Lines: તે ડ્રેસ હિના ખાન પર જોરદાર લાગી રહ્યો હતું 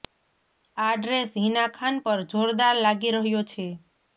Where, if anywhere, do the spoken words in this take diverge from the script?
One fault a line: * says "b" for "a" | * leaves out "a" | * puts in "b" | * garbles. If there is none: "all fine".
* says "આ" for "તે"
* says "છે" for "હતું"